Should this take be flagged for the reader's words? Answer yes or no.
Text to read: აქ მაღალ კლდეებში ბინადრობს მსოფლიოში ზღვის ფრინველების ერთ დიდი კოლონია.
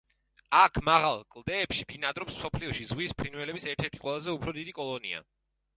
yes